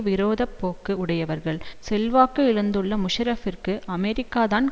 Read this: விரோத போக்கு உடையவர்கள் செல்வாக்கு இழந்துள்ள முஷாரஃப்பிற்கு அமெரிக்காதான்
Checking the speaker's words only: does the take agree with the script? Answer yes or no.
yes